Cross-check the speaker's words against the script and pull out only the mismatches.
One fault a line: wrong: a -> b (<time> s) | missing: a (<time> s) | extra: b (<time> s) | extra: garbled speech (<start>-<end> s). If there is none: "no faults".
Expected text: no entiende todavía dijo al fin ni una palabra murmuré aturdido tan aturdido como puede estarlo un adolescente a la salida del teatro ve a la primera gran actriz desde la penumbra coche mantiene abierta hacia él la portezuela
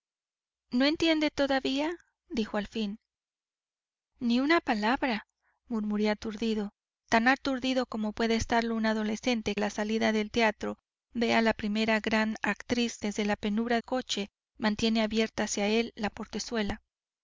no faults